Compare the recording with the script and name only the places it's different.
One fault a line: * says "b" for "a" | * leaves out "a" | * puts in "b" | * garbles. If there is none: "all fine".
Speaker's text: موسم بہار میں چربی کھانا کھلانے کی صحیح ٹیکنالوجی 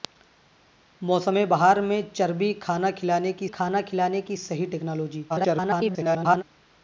* puts in "کھانا کھلانے کی"
* garbles